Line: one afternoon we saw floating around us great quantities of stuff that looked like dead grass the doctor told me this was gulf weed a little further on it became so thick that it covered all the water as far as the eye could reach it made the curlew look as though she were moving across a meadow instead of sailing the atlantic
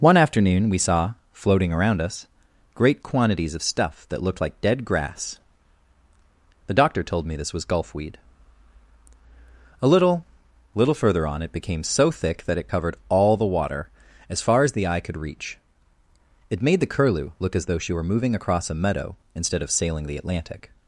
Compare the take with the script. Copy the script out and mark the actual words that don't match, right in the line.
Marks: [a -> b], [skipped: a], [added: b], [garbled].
one afternoon we saw floating around us great quantities of stuff that looked like dead grass the doctor told me this was gulf weed a little [added: little] further on it became so thick that it covered all the water as far as the eye could reach it made the curlew look as though she were moving across a meadow instead of sailing the atlantic